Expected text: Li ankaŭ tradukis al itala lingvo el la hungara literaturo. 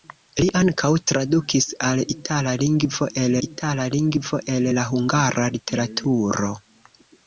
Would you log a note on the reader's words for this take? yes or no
yes